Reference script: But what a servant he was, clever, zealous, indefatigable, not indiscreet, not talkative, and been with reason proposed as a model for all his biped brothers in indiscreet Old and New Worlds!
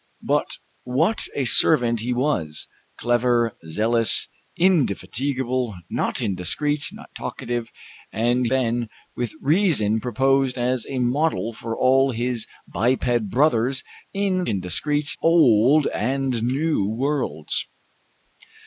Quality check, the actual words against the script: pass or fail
pass